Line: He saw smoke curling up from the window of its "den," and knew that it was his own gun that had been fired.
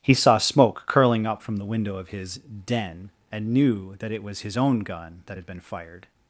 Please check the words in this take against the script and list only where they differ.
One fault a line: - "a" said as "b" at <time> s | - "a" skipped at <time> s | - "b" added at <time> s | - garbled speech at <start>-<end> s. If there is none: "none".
- "its" said as "his" at 2.1 s